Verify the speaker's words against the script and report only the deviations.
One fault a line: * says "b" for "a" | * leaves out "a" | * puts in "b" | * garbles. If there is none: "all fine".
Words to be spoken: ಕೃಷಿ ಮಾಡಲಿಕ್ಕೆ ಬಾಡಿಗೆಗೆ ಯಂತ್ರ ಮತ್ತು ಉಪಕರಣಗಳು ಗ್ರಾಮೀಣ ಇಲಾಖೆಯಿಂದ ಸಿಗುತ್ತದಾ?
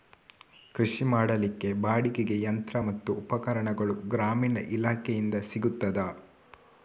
all fine